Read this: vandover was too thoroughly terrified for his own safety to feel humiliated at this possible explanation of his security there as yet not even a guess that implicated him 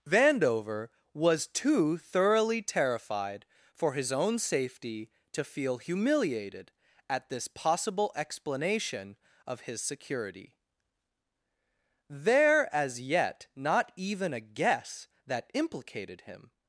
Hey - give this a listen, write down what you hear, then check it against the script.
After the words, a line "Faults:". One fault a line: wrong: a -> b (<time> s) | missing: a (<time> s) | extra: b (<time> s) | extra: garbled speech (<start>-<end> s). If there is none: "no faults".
vandover was too thoroughly terrified for his own safety to feel humiliated at this possible explanation of his security there as yet not even a guess that implicated him
Faults:
no faults